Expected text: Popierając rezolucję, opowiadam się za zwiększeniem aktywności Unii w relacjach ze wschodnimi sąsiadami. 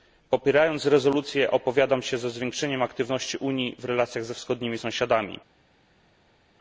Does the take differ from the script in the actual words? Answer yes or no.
no